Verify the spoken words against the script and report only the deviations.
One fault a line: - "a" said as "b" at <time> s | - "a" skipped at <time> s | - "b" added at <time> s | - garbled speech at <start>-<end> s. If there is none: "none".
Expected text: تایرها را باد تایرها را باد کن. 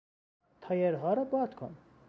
- "تایرها را باد" skipped at 1.6 s